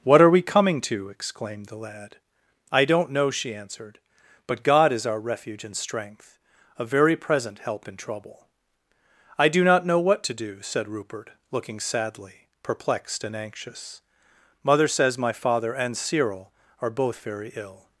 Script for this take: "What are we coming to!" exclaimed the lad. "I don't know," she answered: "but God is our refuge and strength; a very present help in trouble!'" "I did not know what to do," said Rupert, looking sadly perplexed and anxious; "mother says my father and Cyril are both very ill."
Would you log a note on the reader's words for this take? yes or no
yes